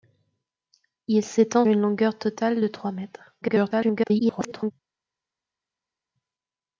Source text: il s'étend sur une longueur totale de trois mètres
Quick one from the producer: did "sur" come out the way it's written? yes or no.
no